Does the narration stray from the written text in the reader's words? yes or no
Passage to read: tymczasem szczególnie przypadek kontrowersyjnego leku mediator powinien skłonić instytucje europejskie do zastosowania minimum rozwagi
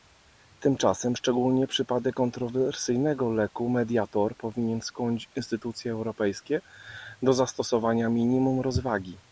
no